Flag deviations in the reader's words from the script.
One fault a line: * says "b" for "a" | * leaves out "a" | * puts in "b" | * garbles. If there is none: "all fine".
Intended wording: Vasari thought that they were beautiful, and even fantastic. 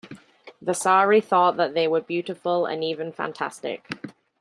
all fine